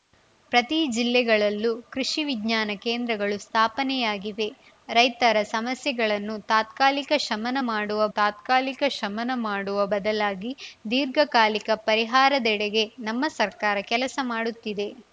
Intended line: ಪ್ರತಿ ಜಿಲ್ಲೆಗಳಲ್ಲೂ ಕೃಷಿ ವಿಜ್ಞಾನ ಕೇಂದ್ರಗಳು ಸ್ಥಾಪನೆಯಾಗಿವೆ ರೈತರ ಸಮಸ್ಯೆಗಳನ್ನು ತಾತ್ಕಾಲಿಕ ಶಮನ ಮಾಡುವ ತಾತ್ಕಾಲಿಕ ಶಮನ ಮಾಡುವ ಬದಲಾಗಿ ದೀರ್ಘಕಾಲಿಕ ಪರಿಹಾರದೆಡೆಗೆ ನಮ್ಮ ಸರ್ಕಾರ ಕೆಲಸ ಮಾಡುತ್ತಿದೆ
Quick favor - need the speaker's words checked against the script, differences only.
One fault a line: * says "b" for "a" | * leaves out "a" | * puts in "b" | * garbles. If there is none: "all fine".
all fine